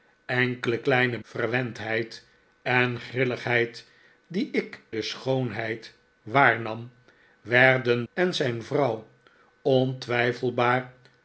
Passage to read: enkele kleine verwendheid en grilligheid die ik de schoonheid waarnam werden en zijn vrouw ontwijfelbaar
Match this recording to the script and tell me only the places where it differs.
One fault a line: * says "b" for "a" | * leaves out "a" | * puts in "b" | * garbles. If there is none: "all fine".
all fine